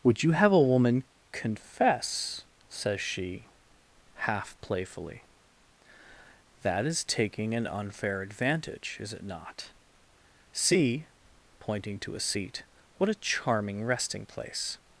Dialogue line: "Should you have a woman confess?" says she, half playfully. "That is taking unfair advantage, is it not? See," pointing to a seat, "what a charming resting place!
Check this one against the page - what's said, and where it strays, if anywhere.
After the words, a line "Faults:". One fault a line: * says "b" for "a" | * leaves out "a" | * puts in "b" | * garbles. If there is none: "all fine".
"Would you have a woman confess?" says she, half playfully. "That is taking an unfair advantage, is it not? See," pointing to a seat, "what a charming resting place!
Faults:
* says "Would" for "Should"
* puts in "an"